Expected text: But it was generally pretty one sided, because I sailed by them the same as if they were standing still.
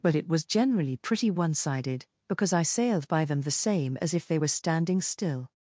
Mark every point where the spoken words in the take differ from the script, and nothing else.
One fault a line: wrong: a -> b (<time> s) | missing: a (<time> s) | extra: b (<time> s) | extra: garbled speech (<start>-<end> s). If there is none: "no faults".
no faults